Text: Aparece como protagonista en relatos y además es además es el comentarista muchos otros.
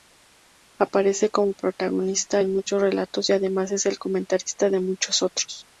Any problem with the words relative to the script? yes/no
yes